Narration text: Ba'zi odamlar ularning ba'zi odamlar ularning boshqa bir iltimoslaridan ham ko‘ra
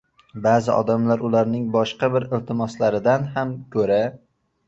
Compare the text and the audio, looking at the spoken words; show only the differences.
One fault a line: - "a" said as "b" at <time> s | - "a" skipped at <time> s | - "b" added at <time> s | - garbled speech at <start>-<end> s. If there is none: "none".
- "ba'zi odamlar ularning" skipped at 1.7 s